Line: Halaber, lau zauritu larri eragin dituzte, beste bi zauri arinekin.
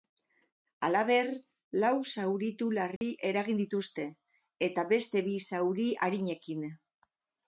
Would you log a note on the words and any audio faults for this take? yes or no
yes